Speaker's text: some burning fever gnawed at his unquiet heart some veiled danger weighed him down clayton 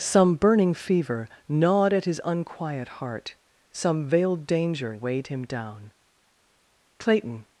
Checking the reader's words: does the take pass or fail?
pass